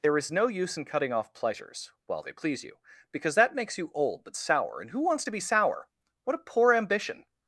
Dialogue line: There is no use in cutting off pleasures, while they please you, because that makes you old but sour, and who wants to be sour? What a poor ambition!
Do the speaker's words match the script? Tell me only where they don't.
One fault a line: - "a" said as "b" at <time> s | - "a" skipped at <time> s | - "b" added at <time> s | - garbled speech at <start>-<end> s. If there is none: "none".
none